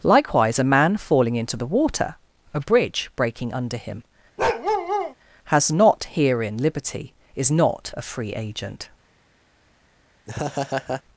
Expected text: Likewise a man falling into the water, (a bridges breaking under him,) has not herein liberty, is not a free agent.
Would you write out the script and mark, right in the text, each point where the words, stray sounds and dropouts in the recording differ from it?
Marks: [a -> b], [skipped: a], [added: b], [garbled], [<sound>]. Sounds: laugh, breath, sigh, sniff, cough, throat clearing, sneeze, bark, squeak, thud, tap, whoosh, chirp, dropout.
Likewise a man falling into the water, (a [bridges -> bridge] breaking under him,) [bark] has not herein liberty, is not a free agent. [laugh]